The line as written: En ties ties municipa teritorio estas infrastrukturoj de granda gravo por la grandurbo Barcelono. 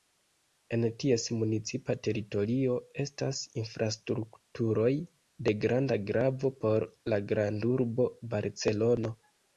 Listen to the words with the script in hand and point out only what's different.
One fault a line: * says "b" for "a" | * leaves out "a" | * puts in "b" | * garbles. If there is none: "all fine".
* leaves out "ties"